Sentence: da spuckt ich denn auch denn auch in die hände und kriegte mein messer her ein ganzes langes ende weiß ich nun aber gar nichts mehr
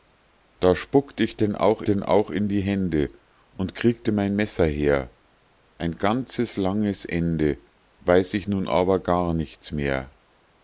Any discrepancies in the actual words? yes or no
no